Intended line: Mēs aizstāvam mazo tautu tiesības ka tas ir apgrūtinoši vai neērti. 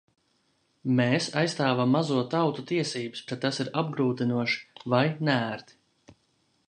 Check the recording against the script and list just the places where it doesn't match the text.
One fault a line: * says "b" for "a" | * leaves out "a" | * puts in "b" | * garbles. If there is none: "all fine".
all fine